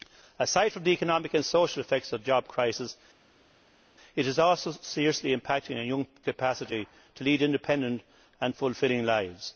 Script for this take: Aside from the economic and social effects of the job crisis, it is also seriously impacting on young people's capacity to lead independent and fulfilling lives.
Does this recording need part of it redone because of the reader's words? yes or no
yes